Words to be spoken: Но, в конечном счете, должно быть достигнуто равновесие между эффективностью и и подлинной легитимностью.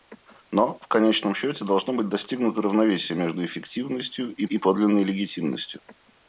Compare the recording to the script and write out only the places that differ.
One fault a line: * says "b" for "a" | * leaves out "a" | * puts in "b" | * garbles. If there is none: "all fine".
all fine